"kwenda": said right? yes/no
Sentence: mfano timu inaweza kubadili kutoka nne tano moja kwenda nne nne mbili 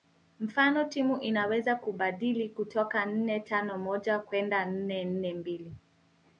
yes